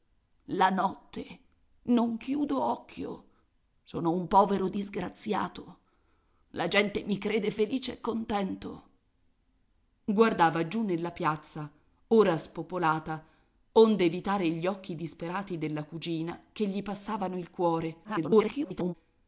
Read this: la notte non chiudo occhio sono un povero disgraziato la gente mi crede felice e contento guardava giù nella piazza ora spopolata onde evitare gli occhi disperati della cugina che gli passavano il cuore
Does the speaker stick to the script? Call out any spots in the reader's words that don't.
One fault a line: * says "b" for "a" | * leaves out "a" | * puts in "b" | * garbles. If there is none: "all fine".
* garbles